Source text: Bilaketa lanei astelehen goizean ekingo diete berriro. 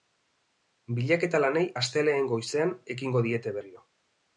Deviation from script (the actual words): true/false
false